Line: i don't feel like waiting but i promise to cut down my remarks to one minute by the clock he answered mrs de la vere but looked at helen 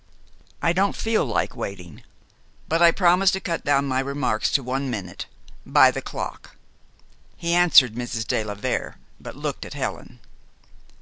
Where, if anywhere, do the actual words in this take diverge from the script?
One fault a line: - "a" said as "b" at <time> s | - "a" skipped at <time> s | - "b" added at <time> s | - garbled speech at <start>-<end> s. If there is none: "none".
none